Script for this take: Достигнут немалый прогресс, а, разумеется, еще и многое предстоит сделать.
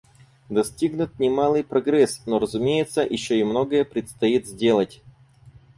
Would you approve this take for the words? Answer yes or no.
no